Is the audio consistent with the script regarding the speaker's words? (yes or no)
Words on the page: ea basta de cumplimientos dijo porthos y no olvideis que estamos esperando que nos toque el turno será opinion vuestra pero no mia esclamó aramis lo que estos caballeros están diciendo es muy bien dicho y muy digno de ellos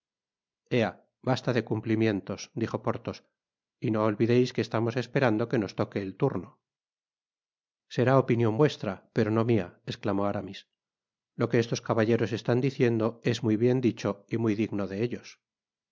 yes